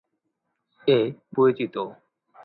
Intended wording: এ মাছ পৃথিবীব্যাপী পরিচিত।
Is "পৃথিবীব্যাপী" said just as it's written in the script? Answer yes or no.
no